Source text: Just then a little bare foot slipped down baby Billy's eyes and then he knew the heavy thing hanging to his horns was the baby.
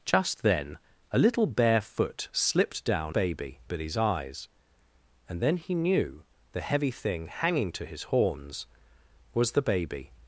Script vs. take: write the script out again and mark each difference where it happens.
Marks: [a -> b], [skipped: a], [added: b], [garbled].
Just then a little bare foot slipped down baby Billy's eyes and then he knew the heavy thing hanging to his horns was the baby.